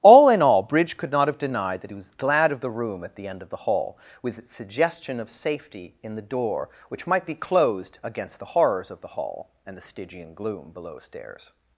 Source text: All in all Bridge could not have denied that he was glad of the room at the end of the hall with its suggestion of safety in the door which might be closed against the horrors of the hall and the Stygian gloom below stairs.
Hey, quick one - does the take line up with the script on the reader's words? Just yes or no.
yes